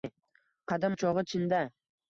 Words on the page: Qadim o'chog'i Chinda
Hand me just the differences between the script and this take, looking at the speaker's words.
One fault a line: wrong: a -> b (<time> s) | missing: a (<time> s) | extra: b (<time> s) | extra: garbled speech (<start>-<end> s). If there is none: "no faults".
no faults